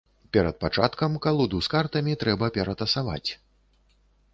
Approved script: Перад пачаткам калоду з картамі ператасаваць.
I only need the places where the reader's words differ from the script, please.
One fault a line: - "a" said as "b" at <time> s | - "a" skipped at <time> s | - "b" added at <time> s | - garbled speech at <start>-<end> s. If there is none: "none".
- "трэба" added at 2.3 s